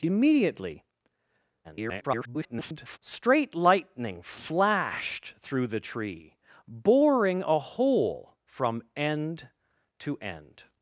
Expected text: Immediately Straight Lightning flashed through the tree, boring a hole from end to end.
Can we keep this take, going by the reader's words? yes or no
no